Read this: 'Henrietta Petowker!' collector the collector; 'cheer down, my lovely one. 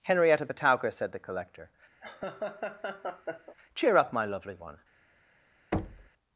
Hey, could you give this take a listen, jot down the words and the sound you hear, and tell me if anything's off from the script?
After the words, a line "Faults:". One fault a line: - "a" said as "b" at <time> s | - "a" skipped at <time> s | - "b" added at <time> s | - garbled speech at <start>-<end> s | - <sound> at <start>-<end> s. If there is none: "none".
'Henrietta Petowker!' said the collector; 'cheer up, my lovely one.
Faults:
- "collector" said as "said" at 0.9 s
- laugh at 2.0-3.6 s
- "down" said as "up" at 3.9 s
- thud at 5.7-6.1 s